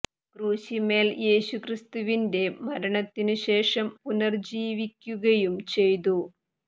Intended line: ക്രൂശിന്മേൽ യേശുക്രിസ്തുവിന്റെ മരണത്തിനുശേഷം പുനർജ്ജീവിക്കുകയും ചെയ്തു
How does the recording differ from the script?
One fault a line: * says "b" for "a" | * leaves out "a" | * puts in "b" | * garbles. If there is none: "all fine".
all fine